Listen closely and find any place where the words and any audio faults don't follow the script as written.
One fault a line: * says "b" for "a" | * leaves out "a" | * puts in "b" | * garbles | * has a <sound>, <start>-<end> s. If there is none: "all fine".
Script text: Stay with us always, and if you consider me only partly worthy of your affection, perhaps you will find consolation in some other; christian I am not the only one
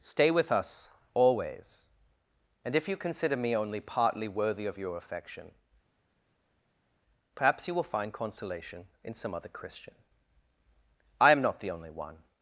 all fine